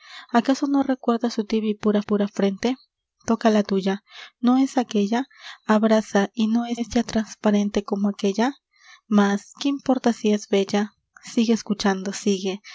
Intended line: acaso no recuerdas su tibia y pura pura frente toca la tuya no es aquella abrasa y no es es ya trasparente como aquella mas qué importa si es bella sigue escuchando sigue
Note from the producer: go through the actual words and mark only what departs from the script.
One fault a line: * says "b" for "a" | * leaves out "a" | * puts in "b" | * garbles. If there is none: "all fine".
all fine